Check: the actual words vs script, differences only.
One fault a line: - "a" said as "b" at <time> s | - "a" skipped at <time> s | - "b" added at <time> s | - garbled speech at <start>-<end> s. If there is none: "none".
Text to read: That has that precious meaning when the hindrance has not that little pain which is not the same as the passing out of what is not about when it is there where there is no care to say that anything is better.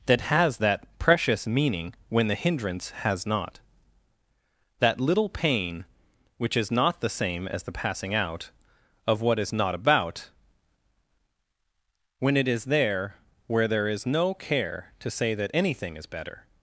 none